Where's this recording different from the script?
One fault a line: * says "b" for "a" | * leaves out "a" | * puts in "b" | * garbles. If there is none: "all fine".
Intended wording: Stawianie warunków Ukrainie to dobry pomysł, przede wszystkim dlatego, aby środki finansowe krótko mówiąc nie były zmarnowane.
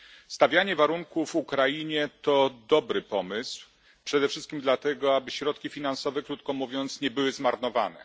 all fine